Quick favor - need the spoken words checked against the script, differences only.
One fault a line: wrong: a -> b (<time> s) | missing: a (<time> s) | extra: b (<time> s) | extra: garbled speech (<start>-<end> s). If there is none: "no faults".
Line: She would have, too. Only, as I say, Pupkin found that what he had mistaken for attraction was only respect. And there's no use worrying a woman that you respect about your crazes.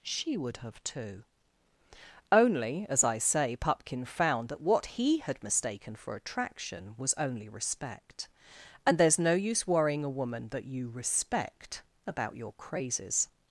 no faults